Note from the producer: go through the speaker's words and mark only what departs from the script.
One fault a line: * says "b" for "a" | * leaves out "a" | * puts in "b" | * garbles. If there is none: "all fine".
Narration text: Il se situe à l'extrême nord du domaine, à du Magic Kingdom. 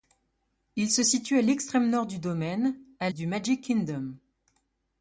all fine